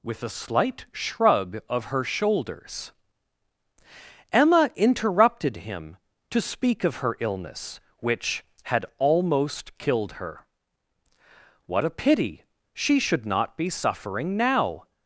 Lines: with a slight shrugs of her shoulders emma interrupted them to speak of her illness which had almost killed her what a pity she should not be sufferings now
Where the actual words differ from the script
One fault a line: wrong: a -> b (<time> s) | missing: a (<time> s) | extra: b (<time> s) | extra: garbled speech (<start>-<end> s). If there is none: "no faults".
wrong: shrugs -> shrug (0.9 s)
wrong: them -> him (5.6 s)
wrong: sufferings -> suffering (13.7 s)